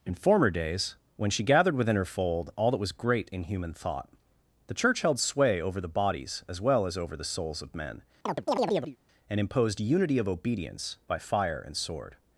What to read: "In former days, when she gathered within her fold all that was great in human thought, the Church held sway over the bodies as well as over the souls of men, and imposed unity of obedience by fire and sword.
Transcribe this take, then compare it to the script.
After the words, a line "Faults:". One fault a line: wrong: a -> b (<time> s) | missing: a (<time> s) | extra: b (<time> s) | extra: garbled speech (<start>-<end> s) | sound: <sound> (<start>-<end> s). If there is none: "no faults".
"In former days, when she gathered within her fold all that was great in human thought, the Church held sway over the bodies as well as over the souls of men, and imposed unity of obedience by fire and sword.
Faults:
sound: chirp (8.3-9.0 s)